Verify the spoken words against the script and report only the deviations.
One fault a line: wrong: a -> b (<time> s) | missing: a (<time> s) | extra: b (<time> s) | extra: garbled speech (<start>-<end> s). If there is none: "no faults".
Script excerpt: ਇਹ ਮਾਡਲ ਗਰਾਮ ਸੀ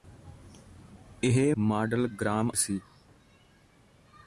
no faults